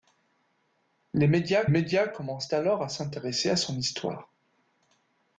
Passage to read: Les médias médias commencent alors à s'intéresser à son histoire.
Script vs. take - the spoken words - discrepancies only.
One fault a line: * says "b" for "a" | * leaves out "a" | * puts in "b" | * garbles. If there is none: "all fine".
all fine